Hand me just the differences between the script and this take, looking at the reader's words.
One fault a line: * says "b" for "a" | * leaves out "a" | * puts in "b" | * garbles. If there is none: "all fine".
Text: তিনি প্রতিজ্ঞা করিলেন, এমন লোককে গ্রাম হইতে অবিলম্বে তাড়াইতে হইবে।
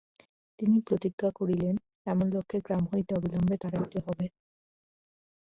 all fine